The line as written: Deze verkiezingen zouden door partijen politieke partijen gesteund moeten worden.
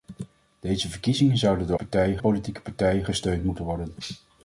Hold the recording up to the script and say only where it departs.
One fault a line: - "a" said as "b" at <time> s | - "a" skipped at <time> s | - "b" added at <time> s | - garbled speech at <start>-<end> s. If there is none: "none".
none